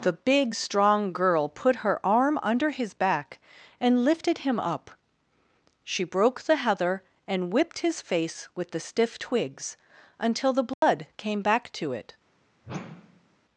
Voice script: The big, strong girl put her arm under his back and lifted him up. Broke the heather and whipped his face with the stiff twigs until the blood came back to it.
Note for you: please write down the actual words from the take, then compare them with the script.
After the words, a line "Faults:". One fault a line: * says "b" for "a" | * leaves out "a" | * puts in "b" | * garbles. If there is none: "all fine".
The big, strong girl put her arm under his back and lifted him up. She broke the heather and whipped his face with the stiff twigs until the blood came back to it.
Faults:
* puts in "She"